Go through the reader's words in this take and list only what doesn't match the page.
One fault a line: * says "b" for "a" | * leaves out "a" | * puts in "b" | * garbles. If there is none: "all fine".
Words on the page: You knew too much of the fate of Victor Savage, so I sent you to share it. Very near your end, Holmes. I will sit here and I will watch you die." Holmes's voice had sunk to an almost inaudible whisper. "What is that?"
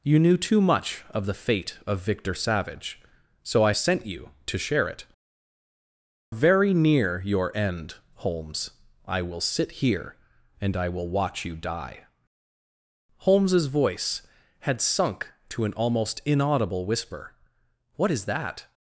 all fine